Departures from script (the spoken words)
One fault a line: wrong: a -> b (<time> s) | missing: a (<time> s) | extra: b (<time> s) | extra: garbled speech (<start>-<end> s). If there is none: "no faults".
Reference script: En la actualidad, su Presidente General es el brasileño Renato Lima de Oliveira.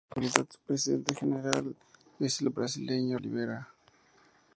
missing: Renato Lima de (3.2 s)